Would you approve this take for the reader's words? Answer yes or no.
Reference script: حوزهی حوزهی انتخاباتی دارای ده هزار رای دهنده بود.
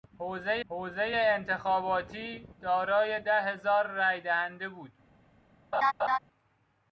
yes